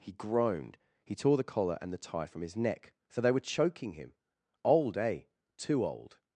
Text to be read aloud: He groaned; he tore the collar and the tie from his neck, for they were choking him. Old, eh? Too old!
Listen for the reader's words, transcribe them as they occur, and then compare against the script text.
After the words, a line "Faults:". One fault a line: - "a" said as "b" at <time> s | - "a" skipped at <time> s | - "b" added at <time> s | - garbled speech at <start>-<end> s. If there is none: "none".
He groaned; he tore the collar and the tie from his neck, so they were choking him. Old, eh? Too old!
Faults:
- "for" said as "so" at 3.1 s